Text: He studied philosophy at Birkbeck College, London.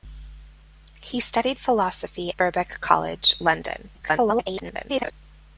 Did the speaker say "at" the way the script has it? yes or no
no